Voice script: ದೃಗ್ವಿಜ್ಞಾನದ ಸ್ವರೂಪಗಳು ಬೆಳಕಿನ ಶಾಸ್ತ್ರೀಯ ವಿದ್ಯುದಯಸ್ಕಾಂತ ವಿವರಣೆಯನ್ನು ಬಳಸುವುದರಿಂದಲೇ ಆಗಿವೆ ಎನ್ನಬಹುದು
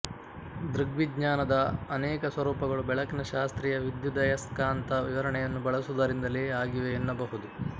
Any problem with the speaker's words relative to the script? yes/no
yes